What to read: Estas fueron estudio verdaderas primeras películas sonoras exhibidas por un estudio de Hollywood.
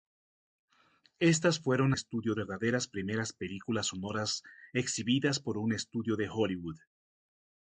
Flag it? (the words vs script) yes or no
no